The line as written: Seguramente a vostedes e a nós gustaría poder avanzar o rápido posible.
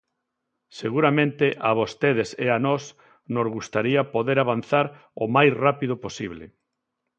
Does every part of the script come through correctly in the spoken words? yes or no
no